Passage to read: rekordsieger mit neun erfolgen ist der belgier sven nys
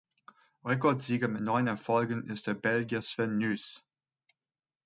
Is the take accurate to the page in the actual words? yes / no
yes